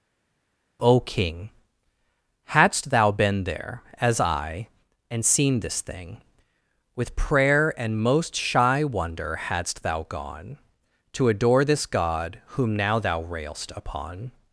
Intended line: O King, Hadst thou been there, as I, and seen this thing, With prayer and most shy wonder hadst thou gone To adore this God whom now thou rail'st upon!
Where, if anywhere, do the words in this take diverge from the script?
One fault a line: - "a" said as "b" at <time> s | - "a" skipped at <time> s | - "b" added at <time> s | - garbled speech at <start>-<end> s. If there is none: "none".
none